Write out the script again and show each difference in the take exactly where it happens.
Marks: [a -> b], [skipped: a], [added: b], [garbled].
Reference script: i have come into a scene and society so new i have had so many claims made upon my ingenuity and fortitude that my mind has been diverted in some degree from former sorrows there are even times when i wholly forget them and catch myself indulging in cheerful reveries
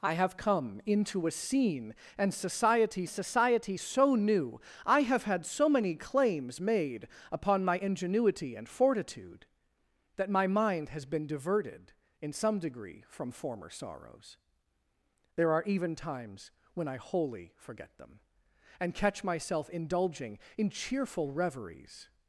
i have come into a scene and society [added: society] so new i have had so many claims made upon my ingenuity and fortitude that my mind has been diverted in some degree from former sorrows there are even times when i wholly forget them and catch myself indulging in cheerful reveries